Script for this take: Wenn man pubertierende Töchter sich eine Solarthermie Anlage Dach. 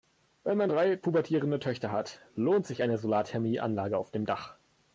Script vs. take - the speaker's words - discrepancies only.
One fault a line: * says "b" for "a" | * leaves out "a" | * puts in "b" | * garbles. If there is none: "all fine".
* puts in "drei"
* puts in "hat lohnt"
* puts in "auf dem"